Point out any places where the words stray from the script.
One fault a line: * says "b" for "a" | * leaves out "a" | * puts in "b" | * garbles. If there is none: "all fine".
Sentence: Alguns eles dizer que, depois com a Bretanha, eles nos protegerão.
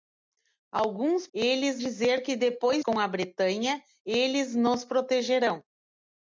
all fine